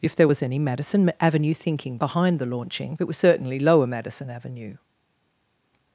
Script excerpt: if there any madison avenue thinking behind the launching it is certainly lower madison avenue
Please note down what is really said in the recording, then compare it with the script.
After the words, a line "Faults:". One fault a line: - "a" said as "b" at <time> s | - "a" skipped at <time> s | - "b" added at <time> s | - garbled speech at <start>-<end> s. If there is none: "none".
if there was any madison avenue thinking behind the launching it was certainly lower madison avenue
Faults:
- "was" added at 0.2 s
- "is" said as "was" at 3.0 s